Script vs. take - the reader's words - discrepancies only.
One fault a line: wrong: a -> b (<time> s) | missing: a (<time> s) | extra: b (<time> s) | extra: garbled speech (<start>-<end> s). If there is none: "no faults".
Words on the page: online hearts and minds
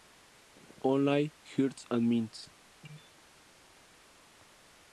no faults